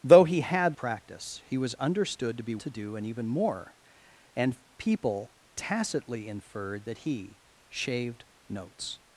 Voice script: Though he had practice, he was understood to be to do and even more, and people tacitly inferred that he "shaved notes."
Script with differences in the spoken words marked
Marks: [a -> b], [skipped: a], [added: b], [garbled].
Though he had practice, he was understood to be to do and even more, and people tacitly inferred that he "shaved notes."